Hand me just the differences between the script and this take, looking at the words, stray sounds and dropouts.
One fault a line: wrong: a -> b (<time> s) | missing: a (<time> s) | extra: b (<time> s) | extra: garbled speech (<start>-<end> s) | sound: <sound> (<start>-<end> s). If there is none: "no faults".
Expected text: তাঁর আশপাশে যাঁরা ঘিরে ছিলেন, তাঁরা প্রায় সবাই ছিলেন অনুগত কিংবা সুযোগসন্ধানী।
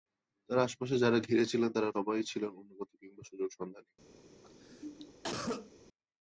missing: প্রায় (1.9 s)
sound: cough (4.4-5.7 s)